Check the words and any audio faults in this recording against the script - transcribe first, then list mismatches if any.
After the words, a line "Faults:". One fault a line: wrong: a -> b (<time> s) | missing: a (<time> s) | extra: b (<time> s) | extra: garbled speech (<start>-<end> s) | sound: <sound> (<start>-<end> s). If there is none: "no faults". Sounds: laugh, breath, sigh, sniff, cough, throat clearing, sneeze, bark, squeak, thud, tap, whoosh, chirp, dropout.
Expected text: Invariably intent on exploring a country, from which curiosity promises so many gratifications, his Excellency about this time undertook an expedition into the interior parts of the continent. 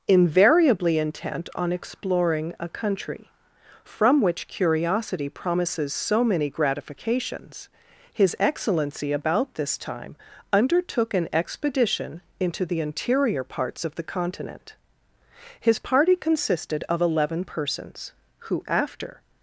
Invariably intent on exploring a country, from which curiosity promises so many gratifications, his Excellency about this time undertook an expedition into the interior parts of the continent. His party consisted of eleven persons, who, after
Faults:
extra: His party consisted of eleven persons who after (15.6 s)